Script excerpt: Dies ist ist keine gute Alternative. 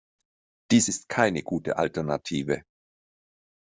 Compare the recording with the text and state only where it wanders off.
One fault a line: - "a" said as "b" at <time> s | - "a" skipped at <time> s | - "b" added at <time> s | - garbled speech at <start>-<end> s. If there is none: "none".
- "ist" skipped at 1.1 s